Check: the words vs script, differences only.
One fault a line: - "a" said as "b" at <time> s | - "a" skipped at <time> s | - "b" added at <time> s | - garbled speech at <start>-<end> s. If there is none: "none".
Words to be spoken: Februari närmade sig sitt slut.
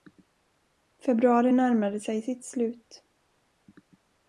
none